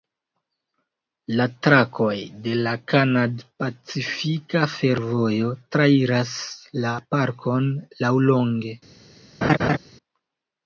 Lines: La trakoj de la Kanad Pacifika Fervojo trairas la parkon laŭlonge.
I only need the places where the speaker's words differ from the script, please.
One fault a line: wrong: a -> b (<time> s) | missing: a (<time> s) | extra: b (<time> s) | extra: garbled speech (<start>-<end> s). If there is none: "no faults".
no faults